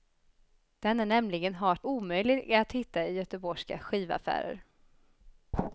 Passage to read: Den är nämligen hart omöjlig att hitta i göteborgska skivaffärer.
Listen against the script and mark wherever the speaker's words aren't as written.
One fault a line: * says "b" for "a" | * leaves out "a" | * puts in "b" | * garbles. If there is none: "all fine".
all fine